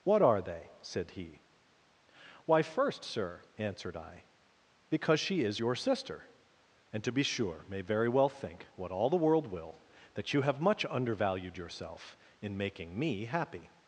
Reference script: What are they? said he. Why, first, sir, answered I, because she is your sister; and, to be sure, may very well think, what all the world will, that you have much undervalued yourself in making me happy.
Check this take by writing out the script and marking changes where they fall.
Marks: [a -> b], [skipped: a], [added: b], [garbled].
What are they? said he. Why, first, sir, answered I, because she is your sister; and, to be sure, may very well think, what all the world will, that you have much undervalued yourself in making me happy.